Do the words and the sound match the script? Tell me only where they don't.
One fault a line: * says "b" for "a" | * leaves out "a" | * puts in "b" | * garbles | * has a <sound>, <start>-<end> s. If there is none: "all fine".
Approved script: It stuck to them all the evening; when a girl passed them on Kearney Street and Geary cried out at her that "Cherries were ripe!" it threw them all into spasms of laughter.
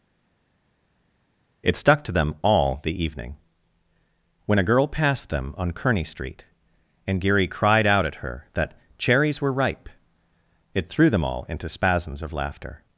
all fine